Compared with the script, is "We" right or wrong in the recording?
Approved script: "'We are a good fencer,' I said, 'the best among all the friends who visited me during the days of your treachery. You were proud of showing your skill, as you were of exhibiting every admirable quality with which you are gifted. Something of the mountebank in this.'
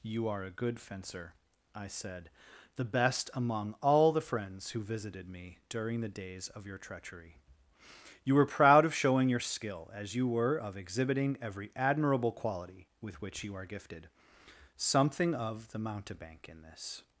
wrong